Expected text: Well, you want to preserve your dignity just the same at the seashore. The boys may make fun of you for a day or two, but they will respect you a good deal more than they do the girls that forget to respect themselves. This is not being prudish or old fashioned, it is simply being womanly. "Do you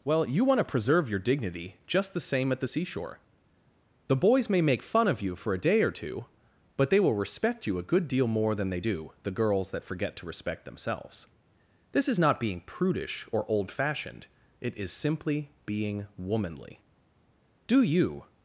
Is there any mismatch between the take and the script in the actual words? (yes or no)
no